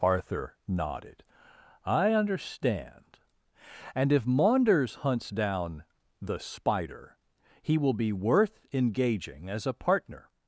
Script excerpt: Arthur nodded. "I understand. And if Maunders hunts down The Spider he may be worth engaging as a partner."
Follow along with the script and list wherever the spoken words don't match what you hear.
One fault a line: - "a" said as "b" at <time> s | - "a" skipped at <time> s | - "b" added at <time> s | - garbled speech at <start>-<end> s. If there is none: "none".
- "may" said as "will" at 7.8 s